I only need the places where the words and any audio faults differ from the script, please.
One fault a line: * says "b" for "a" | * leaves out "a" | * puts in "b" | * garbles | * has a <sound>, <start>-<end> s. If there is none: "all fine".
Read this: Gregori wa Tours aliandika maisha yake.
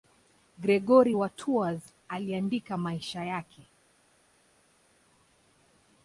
all fine